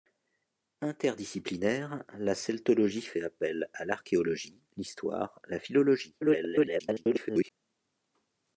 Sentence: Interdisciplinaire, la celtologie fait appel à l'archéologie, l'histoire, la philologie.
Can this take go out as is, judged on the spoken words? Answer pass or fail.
fail